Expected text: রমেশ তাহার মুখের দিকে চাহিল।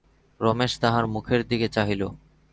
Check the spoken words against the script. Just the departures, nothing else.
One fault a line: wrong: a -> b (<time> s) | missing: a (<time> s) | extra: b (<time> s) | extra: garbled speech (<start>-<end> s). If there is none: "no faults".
no faults